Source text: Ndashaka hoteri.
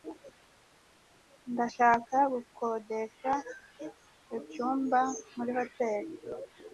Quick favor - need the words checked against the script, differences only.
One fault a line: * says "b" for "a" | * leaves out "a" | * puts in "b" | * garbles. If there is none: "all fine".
* puts in "gukodesha icyumba muri"